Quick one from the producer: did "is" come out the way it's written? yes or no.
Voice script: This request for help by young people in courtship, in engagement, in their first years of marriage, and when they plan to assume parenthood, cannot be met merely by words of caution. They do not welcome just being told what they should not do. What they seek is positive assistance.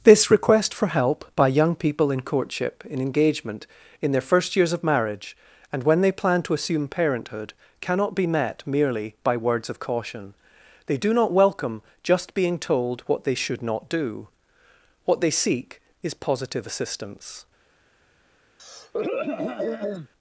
yes